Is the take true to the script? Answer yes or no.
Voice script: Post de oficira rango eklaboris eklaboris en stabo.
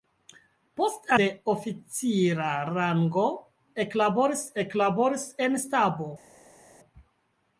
yes